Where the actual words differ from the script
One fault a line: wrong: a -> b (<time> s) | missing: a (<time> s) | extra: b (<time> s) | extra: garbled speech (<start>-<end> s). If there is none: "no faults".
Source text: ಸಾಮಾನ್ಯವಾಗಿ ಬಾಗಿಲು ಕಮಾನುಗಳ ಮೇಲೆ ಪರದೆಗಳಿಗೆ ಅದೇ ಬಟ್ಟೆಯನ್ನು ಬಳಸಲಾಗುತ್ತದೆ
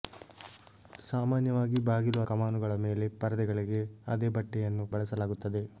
no faults